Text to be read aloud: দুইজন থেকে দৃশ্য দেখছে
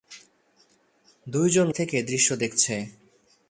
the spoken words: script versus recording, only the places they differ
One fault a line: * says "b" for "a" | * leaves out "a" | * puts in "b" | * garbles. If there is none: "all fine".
all fine